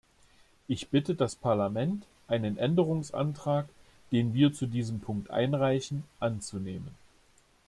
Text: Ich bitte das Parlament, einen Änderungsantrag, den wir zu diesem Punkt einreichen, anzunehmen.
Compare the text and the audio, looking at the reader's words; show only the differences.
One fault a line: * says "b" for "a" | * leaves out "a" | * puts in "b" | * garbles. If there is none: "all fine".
all fine